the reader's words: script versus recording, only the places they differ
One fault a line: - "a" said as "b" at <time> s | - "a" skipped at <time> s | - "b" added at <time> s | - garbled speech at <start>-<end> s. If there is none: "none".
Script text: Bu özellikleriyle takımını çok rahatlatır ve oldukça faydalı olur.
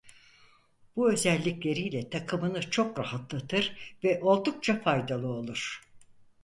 none